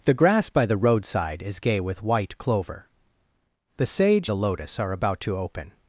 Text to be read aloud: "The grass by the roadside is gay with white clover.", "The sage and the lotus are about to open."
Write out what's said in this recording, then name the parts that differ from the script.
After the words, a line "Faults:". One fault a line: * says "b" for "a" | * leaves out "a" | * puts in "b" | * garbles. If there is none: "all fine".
"The grass by the roadside is gay with white clover.", "The sage the lotus are about to open."
Faults:
* leaves out "and"